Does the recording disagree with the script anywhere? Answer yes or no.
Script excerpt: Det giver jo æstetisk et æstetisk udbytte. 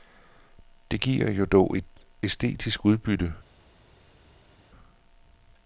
yes